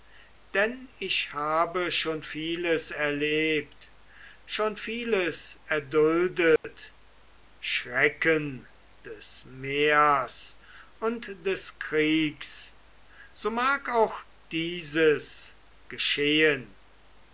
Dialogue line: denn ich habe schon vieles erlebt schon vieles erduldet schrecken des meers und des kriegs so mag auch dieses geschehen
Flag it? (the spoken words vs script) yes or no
no